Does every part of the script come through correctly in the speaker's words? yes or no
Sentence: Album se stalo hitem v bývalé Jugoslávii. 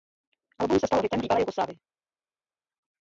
yes